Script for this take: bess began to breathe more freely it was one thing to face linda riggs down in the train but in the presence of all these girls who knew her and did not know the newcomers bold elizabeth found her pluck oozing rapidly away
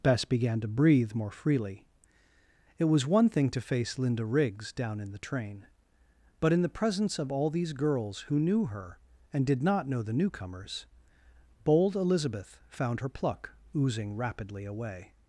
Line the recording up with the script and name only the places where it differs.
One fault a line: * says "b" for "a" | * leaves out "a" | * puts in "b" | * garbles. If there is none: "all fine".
all fine